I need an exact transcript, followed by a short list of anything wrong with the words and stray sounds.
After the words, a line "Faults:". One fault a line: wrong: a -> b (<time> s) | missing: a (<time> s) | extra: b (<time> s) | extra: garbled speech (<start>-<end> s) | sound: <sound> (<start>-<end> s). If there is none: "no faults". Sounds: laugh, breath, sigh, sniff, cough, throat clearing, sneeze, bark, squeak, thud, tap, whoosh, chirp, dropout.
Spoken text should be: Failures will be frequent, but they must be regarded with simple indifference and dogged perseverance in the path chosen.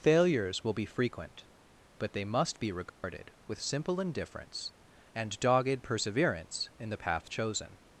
Failures will be frequent, but they must be regarded with simple indifference and dogged perseverance in the path chosen.
Faults:
sound: dropout (2.9-3.0 s)